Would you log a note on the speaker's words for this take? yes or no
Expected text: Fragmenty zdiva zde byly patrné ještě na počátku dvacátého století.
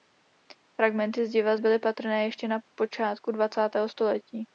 yes